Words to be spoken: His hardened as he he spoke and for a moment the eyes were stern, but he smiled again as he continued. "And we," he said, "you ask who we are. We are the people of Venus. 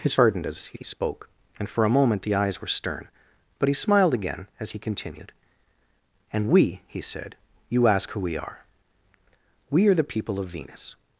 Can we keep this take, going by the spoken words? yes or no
yes